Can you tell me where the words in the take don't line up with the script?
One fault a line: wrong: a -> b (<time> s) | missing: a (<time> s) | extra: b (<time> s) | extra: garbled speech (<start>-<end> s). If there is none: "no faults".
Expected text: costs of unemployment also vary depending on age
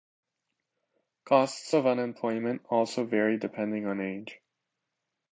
no faults